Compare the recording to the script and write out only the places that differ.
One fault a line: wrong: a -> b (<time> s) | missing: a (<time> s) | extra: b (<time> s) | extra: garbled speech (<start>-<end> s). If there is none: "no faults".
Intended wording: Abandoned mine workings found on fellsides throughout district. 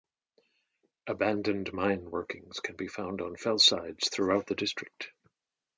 extra: can be (2.6 s)
extra: the (4.5 s)